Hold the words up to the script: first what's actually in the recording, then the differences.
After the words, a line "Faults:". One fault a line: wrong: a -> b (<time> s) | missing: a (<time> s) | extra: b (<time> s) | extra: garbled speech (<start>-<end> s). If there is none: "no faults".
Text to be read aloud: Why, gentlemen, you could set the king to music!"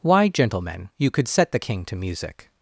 Why, gentlemen, you could set the king to music!"
Faults:
no faults